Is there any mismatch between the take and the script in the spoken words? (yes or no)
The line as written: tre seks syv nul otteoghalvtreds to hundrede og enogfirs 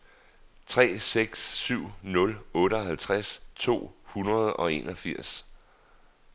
no